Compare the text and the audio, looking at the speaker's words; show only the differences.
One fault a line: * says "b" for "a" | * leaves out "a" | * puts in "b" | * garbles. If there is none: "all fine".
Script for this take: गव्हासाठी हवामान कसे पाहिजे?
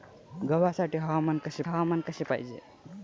* puts in "हवामान कसे"